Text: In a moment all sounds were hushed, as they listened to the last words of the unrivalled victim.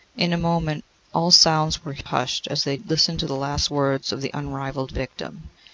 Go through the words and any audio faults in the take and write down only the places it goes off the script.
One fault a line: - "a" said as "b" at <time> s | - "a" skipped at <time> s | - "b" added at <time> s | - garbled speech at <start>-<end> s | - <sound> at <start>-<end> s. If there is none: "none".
none